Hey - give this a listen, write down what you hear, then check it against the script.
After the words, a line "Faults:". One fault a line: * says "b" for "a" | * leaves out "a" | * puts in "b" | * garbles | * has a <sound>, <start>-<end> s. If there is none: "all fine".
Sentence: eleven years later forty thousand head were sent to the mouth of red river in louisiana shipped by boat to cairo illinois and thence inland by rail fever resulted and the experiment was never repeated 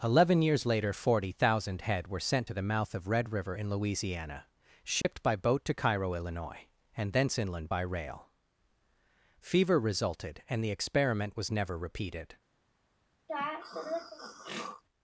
eleven years later forty thousand head were sent to the mouth of red river in louisiana shipped by boat to cairo illinois and thence inland by rail fever resulted and the experiment was never repeated
Faults:
* has a dropout, 5.0-5.0 s
* has a throat clearing, 13.3-14.8 s